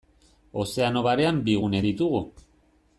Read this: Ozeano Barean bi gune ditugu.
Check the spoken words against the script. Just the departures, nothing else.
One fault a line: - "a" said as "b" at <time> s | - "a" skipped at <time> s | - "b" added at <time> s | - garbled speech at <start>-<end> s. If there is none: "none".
none